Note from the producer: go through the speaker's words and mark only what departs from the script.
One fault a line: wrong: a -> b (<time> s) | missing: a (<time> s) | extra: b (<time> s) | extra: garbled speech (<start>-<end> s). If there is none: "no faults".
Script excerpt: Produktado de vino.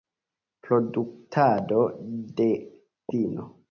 no faults